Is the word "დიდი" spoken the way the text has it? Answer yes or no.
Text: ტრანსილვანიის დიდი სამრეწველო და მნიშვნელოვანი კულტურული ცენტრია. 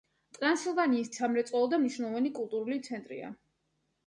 no